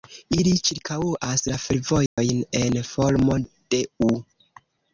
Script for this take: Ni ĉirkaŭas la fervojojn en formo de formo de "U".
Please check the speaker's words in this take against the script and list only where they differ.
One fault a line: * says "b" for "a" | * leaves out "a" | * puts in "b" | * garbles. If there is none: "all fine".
* says "Ili" for "Ni"
* leaves out "formo de"